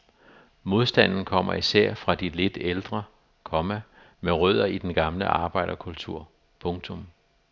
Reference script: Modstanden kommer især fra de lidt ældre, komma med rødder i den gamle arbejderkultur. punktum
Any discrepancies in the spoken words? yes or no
no